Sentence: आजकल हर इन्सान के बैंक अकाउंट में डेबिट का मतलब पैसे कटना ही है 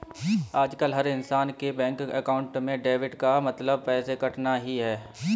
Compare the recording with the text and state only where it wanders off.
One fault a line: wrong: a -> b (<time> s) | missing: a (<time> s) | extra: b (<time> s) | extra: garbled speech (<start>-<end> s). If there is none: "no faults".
no faults